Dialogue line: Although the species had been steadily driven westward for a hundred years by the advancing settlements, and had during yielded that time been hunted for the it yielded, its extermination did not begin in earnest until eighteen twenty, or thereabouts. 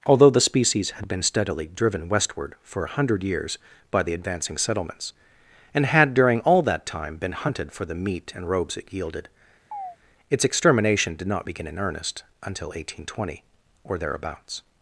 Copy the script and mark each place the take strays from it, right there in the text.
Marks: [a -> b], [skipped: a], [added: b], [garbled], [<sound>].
Although the species had been steadily driven westward for a hundred years by the advancing settlements, and had during [yielded -> all] that time been hunted for the [added: meat and robes] it yielded, [chirp] its extermination did not begin in earnest until eighteen twenty, or thereabouts.